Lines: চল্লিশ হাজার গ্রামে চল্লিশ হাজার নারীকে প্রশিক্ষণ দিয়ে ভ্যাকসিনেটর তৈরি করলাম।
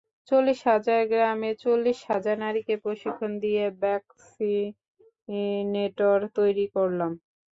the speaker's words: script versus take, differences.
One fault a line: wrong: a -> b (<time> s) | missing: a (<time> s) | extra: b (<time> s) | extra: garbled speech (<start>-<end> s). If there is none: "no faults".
no faults